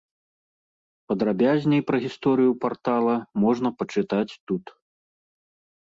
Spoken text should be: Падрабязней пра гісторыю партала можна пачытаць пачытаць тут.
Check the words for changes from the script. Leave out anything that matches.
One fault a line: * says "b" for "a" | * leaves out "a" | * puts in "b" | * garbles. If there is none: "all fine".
* leaves out "пачытаць"